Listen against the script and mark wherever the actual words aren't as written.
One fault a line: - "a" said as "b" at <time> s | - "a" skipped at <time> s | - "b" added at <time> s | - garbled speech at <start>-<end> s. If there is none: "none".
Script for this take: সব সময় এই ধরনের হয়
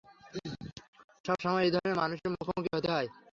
- "মানুষের মুখোমুখি হতে" added at 2.0 s